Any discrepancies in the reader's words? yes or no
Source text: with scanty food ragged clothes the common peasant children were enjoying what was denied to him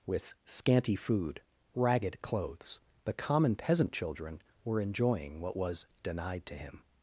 no